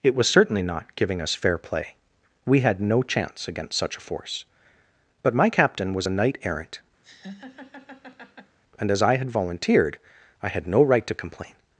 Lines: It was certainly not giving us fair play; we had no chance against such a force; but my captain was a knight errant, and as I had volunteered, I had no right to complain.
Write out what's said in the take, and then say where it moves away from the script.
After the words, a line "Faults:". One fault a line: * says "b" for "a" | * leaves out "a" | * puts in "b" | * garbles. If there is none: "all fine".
It was certainly not giving us fair play; we had no chance against such a force; but my captain was a knight errant, and as I had volunteered, I had no right to complain.
Faults:
all fine